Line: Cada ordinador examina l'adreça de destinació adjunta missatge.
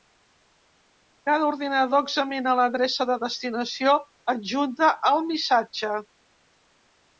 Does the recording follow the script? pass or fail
fail